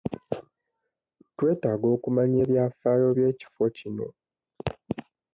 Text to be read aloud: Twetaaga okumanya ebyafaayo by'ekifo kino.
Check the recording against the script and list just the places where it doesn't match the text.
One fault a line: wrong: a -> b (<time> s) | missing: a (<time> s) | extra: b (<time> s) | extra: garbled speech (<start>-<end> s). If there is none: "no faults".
no faults